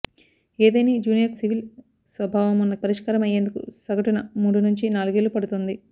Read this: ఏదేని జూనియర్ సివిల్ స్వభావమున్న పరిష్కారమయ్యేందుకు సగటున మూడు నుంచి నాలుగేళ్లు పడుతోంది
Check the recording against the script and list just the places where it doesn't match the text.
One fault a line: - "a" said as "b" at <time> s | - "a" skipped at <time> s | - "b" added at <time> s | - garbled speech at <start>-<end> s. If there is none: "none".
none